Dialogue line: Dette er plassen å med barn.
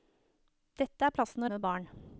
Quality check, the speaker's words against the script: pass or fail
pass